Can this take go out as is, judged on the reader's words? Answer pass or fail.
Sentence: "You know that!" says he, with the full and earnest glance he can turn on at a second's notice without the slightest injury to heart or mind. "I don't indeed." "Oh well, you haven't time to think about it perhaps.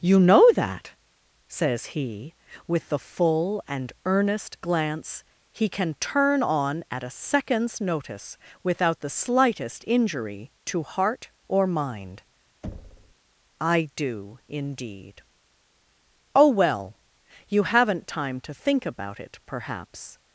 fail